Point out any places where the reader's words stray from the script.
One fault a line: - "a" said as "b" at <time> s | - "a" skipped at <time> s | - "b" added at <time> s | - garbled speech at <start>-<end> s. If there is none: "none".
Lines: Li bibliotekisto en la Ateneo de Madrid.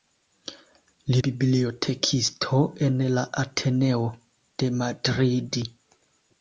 none